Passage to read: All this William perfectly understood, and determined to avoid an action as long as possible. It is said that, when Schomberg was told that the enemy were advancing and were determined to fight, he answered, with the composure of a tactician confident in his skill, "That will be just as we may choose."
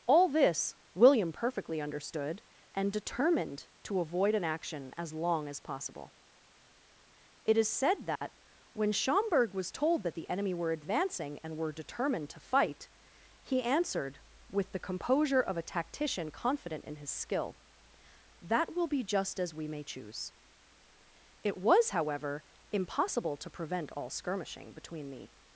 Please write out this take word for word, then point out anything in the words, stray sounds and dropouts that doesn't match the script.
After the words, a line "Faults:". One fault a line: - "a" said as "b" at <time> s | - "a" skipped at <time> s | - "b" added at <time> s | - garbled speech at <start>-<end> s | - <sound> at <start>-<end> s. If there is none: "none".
All this William perfectly understood, and determined to avoid an action as long as possible. It is said that, when Schomberg was told that the enemy were advancing and were determined to fight, he answered, with the composure of a tactician confident in his skill, "That will be just as we may choose." It was, however, impossible to prevent all skirmishing between the
Faults:
- dropout at 8.2-8.2 s
- "It was however impossible to prevent all skirmishing between the" added at 21.4 s